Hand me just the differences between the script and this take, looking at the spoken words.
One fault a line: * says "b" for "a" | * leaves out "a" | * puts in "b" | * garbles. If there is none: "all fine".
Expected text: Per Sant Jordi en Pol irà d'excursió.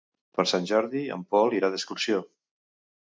all fine